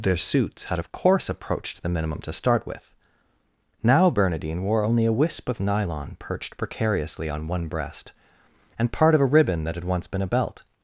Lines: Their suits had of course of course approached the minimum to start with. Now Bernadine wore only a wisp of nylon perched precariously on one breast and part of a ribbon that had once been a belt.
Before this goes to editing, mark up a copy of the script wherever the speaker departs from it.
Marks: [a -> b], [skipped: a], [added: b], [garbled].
Their suits had of course [skipped: of course] approached the minimum to start with. Now Bernadine wore only a wisp of nylon perched precariously on one breast and part of a ribbon that had once been a belt.